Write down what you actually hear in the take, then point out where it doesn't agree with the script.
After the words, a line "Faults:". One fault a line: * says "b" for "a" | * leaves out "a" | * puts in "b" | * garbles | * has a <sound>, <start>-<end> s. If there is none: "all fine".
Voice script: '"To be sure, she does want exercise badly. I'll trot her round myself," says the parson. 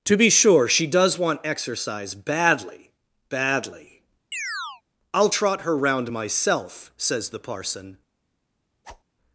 '"To be sure, she does want exercise badly badly. I'll trot her round myself," says the parson.
Faults:
* puts in "badly"
* has a chirp, 4.3-4.8 s
* has a whoosh, 8.8-9.0 s